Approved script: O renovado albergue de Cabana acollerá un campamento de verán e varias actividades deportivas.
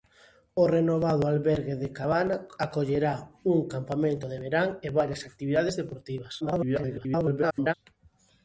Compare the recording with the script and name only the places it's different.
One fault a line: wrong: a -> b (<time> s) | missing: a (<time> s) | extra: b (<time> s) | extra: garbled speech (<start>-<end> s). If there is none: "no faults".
extra: garbled speech (6.4-7.7 s)